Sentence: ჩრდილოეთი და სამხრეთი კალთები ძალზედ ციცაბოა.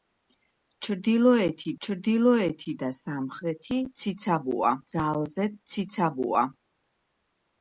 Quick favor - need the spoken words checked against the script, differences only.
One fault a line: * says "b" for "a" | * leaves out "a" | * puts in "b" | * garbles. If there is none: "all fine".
* puts in "ჩრდილოეთი"
* says "ციცაბოა" for "კალთები"